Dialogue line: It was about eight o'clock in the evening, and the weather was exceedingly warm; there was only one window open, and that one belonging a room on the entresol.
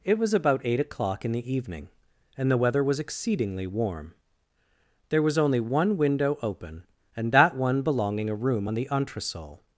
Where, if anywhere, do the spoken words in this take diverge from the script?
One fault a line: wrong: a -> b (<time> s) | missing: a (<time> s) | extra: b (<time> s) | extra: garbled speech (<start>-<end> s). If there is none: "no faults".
no faults